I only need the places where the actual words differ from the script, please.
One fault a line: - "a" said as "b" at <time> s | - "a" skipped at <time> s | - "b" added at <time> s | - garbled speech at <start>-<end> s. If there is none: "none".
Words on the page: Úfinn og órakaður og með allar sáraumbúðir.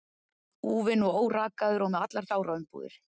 none